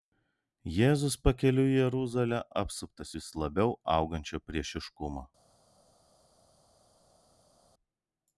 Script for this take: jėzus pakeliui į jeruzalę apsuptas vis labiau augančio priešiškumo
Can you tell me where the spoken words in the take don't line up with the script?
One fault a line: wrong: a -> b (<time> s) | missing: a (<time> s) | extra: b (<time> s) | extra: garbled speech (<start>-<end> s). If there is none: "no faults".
no faults